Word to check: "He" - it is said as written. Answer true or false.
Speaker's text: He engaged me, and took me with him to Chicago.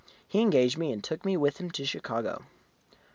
true